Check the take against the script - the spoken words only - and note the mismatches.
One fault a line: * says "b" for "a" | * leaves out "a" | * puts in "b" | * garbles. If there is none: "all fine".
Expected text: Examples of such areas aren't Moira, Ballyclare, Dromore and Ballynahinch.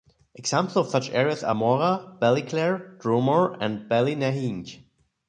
* says "are" for "aren't"